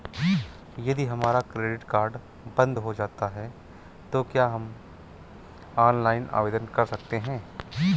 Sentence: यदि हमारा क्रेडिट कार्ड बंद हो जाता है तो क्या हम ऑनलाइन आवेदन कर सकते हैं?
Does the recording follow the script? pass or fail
pass